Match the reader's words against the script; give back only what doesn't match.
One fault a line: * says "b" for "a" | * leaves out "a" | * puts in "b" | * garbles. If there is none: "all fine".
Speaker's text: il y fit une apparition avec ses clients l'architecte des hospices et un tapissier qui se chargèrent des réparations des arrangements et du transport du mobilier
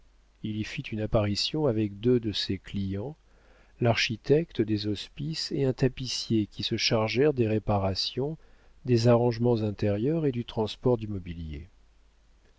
* puts in "deux de"
* puts in "intérieurs"